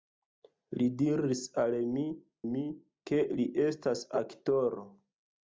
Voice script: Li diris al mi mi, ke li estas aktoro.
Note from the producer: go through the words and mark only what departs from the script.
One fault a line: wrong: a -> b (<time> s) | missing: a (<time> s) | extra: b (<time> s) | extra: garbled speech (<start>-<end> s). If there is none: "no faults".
no faults